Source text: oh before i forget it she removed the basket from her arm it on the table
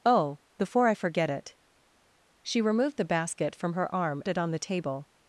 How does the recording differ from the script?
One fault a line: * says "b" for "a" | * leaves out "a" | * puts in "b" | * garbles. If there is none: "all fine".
all fine